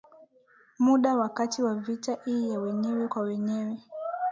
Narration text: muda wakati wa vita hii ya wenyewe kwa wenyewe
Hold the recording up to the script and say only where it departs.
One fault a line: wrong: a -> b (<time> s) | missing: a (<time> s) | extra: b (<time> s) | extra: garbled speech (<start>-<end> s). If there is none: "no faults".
no faults